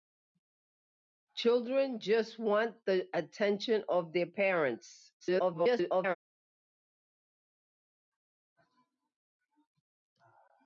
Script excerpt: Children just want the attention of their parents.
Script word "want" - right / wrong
right